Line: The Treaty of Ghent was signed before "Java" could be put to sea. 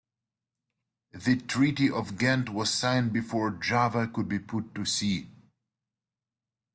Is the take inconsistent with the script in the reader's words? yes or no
no